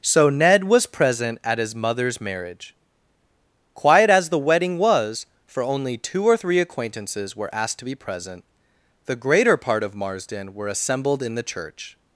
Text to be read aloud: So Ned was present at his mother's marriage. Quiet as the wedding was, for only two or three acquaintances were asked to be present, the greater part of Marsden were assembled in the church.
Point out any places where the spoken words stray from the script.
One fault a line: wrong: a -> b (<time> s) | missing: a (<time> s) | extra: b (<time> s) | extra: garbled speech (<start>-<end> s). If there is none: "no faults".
no faults